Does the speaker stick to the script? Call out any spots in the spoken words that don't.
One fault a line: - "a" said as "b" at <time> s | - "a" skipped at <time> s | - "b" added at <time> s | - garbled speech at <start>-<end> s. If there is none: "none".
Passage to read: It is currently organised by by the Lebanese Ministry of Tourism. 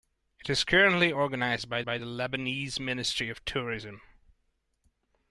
none